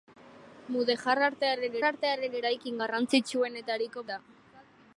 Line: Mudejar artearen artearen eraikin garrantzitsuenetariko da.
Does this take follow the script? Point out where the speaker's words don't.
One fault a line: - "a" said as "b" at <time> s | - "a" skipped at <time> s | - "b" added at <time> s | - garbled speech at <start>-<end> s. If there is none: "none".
none